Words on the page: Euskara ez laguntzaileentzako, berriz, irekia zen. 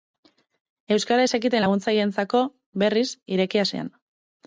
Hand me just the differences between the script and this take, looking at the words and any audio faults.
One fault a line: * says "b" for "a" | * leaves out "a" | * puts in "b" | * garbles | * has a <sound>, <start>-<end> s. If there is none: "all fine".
* puts in "zekiten"